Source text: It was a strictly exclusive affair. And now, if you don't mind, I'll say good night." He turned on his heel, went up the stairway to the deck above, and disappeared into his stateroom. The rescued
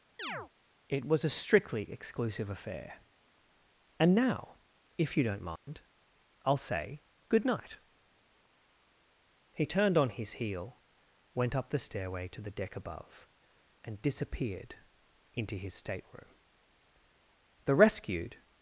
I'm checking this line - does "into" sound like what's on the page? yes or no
yes